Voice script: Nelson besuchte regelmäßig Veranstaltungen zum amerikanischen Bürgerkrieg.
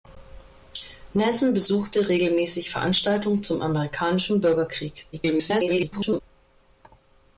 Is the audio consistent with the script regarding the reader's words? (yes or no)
no